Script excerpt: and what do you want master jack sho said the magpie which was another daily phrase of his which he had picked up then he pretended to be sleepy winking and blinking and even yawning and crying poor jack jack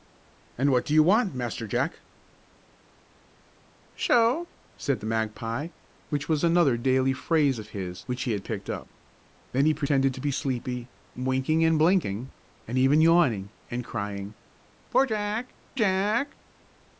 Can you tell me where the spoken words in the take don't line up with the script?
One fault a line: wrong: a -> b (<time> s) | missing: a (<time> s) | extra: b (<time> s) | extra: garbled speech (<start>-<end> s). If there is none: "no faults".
no faults